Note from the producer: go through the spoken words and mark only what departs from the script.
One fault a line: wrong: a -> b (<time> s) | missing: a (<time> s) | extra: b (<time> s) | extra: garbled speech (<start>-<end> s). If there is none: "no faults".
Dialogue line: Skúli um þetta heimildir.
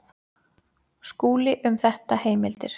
no faults